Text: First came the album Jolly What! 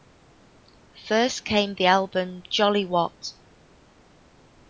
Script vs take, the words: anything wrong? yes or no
no